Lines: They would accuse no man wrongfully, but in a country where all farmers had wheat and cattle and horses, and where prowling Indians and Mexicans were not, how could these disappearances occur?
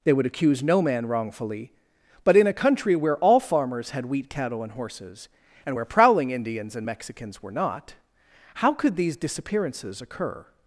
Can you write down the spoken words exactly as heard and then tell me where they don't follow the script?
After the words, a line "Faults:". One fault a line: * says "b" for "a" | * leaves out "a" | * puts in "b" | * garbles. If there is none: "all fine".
They would accuse no man wrongfully, but in a country where all farmers had wheat cattle and horses, and where prowling Indians and Mexicans were not, how could these disappearances occur?
Faults:
* leaves out "and"